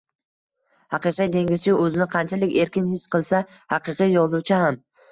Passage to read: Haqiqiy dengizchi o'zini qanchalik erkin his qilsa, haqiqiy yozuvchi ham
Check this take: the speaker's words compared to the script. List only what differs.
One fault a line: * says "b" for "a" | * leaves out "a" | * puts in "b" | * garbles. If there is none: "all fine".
all fine